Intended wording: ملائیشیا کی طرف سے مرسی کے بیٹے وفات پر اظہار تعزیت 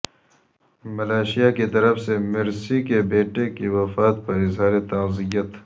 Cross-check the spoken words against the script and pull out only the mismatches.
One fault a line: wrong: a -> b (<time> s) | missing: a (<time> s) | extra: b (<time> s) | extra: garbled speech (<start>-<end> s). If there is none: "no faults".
extra: کی (3.5 s)